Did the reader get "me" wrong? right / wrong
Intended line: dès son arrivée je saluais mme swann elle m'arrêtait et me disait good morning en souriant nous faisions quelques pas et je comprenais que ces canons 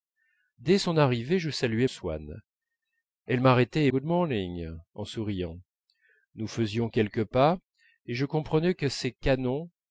wrong